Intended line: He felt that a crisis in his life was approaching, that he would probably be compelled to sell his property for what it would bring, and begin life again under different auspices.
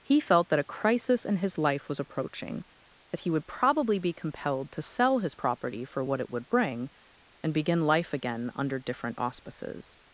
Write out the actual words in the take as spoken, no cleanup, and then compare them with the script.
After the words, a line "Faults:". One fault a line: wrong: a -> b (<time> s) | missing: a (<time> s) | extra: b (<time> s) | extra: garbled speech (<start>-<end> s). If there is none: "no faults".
He felt that a crisis in his life was approaching, that he would probably be compelled to sell his property for what it would bring, and begin life again under different auspices.
Faults:
no faults